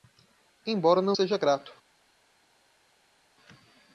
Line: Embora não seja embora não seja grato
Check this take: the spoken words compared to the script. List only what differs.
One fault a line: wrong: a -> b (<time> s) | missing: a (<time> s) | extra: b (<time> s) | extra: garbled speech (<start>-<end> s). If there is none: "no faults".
missing: embora não seja (1.4 s)